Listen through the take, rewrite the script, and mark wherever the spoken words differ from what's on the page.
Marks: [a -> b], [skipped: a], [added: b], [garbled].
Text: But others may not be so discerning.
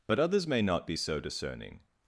But others may not be so discerning.